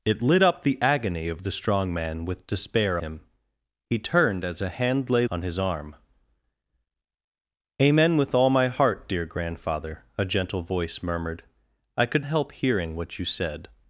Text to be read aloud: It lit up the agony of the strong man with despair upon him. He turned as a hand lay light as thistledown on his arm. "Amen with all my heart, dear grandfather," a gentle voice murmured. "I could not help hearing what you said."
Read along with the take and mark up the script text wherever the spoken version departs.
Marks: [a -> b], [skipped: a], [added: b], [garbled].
It lit up the agony of the strong man with despair [skipped: upon] him. He turned as a hand lay [skipped: light as thistledown] on his arm. "Amen with all my heart, dear grandfather," a gentle voice murmured. "I could [skipped: not] help hearing what you said."